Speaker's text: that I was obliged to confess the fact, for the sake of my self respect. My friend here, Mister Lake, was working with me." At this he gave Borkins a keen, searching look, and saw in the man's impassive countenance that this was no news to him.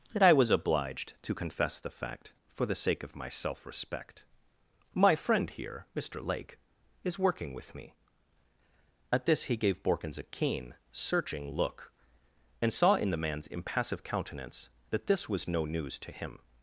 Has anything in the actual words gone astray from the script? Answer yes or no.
yes